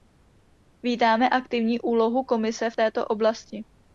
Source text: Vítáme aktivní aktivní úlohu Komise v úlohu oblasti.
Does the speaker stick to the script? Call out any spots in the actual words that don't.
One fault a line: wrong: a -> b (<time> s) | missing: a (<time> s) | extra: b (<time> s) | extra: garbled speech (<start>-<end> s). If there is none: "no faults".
missing: aktivní (1.8 s)
wrong: úlohu -> této (2.7 s)